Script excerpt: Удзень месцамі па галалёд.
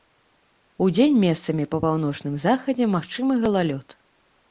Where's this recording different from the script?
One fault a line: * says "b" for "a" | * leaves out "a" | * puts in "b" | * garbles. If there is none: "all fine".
* puts in "паўночным захадзе магчымы"